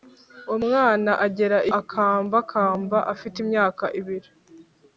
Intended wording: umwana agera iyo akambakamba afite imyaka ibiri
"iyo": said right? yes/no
no